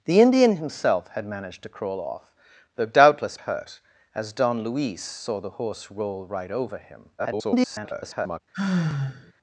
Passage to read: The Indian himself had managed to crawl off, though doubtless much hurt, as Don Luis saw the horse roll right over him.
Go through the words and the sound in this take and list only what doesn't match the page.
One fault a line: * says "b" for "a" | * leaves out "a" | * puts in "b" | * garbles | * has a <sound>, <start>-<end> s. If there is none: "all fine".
* leaves out "much"
* garbles
* has a sigh, 8.5-9.3 s